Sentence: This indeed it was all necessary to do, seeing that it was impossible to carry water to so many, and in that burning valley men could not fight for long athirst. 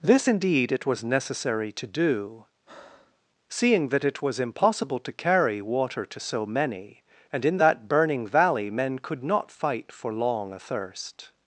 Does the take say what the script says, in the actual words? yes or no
no